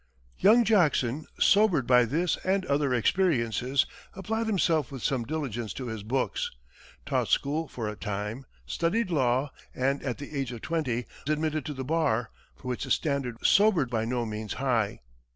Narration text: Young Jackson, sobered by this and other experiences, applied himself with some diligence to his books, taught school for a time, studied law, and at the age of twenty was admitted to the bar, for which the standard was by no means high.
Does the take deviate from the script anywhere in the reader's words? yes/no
yes